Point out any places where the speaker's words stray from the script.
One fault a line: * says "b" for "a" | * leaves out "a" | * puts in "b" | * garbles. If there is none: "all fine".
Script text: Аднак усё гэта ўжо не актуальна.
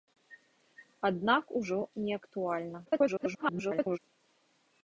* leaves out "усё гэта"
* garbles